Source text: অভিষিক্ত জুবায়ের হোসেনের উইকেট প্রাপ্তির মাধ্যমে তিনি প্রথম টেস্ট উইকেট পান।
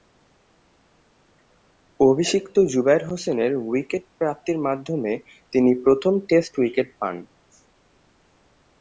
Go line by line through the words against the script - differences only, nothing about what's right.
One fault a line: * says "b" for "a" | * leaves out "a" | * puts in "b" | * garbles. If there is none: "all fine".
all fine